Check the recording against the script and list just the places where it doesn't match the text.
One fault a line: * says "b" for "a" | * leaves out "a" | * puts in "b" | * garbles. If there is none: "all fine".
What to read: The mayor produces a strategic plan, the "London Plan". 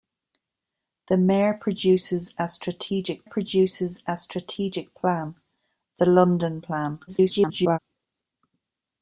* puts in "produces a strategic"
* garbles